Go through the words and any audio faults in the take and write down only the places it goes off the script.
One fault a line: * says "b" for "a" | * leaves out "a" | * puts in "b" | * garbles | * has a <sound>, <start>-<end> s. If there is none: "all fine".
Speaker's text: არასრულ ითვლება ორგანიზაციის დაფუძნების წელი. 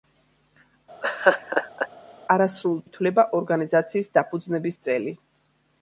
* has a laugh, 1.0-1.9 s